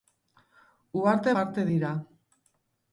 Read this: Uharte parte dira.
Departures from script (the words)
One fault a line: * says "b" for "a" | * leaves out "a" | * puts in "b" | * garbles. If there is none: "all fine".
all fine